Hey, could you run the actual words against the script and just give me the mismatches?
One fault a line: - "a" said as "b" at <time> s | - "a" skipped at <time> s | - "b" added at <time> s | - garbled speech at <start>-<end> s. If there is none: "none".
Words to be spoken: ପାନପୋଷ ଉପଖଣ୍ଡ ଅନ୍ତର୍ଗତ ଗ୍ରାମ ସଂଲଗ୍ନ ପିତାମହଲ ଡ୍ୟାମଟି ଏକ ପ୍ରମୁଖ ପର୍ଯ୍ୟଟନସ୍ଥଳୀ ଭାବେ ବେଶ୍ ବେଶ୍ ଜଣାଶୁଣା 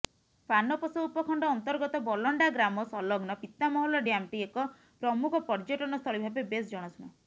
- "ବଲଣ୍ଡା" added at 2.1 s
- "ବେଶ୍" skipped at 6.7 s